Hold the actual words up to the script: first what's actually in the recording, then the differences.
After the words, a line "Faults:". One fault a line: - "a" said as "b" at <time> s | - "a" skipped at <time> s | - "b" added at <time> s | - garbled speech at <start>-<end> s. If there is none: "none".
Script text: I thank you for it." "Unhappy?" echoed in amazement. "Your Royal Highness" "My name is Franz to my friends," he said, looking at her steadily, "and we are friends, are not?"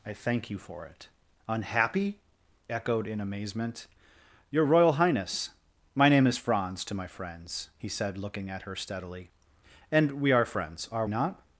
I thank you for it." "Unhappy?" echoed in amazement. "Your Royal Highness" "My name is Franz to my friends," he said, looking at her steadily, "and we are friends, are not?"
Faults:
none